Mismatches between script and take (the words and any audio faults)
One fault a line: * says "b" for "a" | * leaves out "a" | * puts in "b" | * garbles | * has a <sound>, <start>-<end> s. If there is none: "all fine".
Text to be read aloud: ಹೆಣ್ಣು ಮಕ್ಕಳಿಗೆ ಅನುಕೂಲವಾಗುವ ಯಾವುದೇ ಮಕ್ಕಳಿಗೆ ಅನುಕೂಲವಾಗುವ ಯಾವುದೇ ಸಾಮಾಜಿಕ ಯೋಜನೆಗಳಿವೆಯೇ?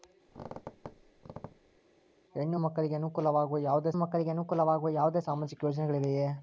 * has a squeak, 0.3-1.8 s